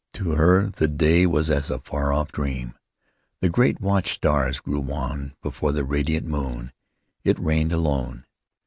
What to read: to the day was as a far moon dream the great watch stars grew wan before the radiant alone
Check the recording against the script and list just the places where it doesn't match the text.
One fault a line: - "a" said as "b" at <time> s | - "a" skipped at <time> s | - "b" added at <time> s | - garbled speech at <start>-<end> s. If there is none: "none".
- "her" added at 0.3 s
- "moon" said as "off" at 2.1 s
- "moon it reigned" added at 6.3 s